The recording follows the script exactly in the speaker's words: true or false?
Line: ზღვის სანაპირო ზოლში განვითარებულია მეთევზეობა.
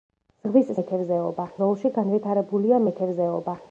false